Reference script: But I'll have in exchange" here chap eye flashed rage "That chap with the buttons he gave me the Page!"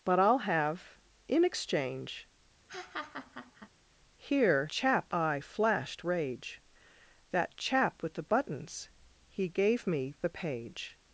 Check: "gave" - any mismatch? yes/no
no